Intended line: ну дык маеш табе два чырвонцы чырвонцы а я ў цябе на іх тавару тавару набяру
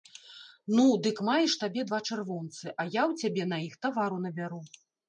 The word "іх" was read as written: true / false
true